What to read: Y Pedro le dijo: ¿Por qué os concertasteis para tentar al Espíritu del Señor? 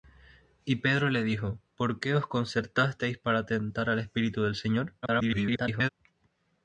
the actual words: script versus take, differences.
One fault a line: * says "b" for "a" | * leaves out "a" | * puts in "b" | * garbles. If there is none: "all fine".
* garbles